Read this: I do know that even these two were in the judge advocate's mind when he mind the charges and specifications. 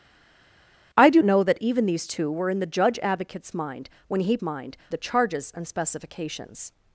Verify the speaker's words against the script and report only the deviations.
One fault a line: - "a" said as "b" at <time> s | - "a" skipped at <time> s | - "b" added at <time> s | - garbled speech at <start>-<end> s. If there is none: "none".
none